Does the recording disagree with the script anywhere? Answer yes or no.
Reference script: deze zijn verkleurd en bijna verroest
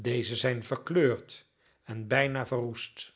no